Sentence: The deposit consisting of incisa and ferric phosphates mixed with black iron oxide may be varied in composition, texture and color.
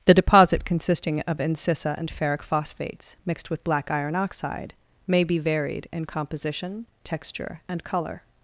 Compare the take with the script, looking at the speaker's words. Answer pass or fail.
pass